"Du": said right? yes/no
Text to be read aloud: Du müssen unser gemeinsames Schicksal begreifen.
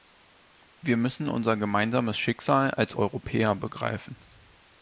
no